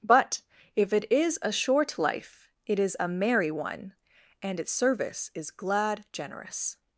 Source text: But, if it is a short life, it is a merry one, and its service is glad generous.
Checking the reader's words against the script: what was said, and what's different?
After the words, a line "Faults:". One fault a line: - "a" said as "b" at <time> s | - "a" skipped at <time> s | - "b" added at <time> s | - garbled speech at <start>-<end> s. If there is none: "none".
But, if it is a short life, it is a merry one, and its service is glad generous.
Faults:
none